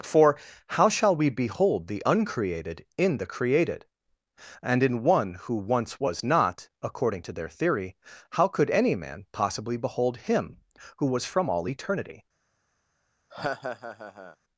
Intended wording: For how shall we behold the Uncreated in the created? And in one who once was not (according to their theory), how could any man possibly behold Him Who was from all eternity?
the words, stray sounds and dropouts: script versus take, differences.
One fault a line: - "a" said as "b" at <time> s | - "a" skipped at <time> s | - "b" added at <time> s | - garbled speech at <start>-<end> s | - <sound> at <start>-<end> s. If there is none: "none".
- laugh at 13.3-14.4 s